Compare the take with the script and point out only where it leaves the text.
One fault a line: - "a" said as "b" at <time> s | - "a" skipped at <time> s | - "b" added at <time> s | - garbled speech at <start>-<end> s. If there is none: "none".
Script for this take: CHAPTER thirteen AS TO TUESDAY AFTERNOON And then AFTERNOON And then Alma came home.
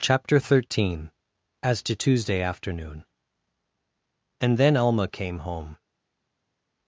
- "AFTERNOON And then" skipped at 4.8 s